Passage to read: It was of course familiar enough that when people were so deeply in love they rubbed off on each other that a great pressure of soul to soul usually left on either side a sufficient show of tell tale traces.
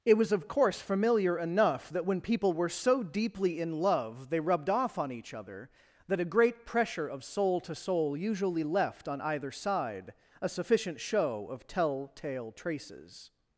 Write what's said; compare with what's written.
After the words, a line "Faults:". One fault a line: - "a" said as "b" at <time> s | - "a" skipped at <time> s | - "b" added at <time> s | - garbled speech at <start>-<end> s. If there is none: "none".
It was of course familiar enough that when people were so deeply in love they rubbed off on each other that a great pressure of soul to soul usually left on either side a sufficient show of tell tale traces.
Faults:
none